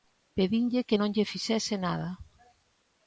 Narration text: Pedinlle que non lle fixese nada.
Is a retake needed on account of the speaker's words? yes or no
no